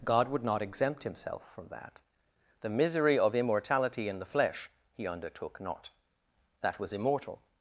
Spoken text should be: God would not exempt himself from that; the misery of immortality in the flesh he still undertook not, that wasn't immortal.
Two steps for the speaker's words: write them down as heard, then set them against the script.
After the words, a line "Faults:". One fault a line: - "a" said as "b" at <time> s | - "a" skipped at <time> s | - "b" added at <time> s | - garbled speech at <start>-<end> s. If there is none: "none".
God would not exempt himself from that; the misery of immortality in the flesh he undertook not, that was immortal.
Faults:
- "still" skipped at 5.1 s
- "wasn't" said as "was" at 6.8 s